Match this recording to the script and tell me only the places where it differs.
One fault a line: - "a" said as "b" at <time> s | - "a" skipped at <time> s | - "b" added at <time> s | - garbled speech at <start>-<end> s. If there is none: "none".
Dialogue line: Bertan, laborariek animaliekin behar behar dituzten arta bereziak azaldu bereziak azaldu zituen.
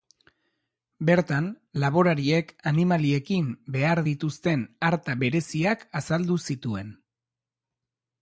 - "behar" skipped at 4.0 s
- "bereziak azaldu" skipped at 6.4 s